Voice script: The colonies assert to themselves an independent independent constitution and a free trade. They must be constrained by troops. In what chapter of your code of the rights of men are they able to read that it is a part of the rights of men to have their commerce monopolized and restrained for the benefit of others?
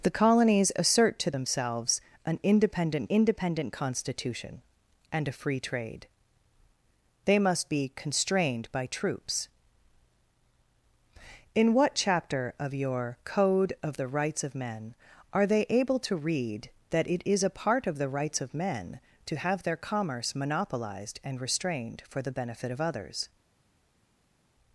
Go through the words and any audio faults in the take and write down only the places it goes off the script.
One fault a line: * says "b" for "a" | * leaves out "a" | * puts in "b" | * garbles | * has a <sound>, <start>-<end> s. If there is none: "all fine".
all fine